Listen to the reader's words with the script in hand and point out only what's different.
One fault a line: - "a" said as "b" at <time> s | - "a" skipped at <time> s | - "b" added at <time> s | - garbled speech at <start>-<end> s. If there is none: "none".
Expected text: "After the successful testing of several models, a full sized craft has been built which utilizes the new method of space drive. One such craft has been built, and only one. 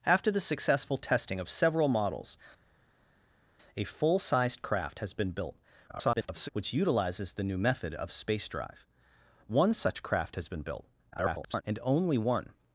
- garbled speech at 5.9-6.5 s
- garbled speech at 11.1-11.6 s